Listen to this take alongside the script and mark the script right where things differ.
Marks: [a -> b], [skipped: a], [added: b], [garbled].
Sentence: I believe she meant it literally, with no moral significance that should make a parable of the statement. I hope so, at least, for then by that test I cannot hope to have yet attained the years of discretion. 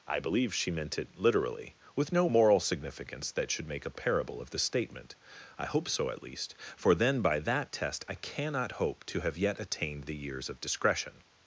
I believe she meant it literally, with no moral significance that should make a parable of the statement. I hope so, at least, for then by that test I cannot hope to have yet attained the years of discretion.